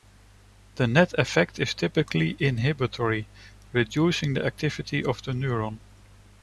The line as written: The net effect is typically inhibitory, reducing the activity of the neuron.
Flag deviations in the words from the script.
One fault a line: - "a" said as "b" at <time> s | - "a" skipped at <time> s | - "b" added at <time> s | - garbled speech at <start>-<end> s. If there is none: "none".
none